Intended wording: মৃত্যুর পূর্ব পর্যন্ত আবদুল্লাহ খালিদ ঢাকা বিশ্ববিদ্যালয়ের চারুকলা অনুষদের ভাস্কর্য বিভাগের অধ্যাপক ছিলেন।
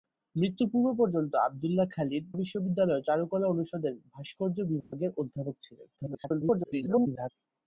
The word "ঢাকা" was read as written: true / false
false